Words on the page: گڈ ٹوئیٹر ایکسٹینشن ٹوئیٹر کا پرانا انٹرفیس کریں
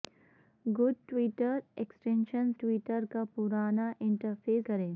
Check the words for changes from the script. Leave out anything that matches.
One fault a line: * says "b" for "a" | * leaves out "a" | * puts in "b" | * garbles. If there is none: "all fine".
all fine